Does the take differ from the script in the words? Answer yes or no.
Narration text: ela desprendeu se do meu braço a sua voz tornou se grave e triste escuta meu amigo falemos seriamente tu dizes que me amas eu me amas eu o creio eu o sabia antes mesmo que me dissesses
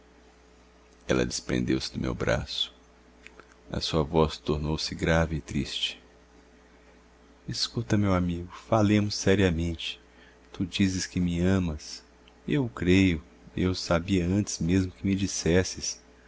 yes